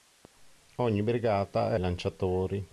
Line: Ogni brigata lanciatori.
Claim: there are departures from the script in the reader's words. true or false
false